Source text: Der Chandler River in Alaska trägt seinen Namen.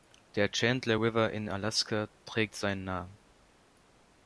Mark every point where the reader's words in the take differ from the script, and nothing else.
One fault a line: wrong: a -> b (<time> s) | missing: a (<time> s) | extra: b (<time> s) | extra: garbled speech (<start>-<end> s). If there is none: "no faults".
no faults